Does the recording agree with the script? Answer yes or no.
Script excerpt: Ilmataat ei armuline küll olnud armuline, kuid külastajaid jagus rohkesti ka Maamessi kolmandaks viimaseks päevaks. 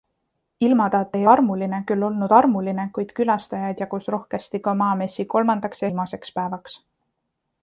yes